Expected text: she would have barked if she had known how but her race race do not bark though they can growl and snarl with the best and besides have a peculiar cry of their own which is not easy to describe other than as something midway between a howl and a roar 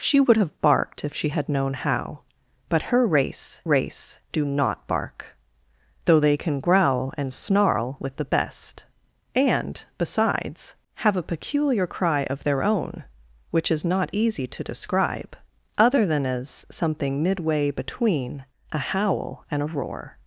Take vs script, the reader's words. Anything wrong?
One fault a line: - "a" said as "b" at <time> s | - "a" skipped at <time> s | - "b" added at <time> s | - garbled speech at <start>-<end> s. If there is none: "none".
none